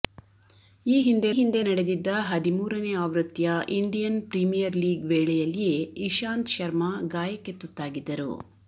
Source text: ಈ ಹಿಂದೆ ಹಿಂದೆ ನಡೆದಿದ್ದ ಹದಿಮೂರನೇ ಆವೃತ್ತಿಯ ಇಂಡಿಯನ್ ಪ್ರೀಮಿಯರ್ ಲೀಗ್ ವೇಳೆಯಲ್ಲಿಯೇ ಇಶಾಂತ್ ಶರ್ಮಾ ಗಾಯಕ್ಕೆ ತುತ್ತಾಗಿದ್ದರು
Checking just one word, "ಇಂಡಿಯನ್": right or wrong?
right